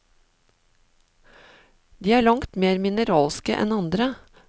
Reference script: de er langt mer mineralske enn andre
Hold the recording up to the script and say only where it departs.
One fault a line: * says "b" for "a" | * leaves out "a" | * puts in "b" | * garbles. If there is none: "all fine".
all fine